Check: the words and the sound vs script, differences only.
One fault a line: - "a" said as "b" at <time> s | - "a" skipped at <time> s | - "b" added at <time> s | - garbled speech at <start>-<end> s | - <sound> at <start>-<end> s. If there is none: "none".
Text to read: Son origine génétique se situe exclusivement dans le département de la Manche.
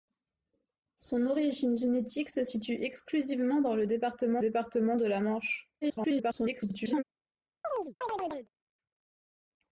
- "département" added at 4.4 s
- garbled speech at 5.8-7.0 s
- chirp at 7.6-8.5 s